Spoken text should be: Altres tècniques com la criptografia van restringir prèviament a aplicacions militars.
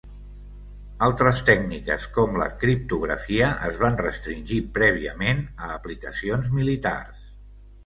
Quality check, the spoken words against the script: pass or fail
fail